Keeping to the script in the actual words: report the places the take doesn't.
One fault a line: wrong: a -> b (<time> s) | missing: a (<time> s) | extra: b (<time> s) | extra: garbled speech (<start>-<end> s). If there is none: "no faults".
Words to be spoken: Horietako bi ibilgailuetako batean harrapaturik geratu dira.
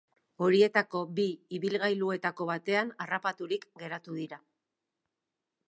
no faults